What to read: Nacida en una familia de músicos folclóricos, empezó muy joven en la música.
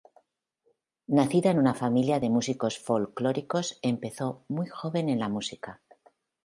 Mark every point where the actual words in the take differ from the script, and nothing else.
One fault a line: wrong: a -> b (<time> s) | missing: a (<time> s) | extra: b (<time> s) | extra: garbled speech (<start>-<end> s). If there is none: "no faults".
no faults